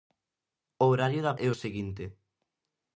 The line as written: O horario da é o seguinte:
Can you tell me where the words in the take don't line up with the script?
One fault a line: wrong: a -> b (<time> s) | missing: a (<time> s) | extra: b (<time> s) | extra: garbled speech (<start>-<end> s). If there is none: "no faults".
no faults